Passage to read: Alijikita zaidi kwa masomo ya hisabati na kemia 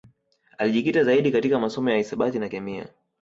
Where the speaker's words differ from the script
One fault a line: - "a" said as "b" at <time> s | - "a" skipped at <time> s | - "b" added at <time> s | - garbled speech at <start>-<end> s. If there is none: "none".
- "kwa" said as "katika" at 1.3 s